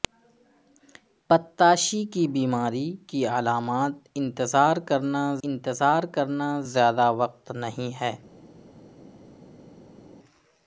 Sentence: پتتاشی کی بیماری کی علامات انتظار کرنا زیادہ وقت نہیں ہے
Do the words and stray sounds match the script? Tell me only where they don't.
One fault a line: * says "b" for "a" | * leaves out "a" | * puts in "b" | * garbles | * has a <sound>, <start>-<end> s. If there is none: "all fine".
* puts in "انتظار کرنا"